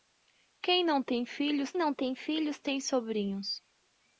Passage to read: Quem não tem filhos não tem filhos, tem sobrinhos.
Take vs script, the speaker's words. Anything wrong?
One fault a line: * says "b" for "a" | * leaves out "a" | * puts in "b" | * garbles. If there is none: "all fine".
all fine